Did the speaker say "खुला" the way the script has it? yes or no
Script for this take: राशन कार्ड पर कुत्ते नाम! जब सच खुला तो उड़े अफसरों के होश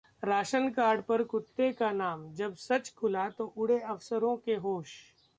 yes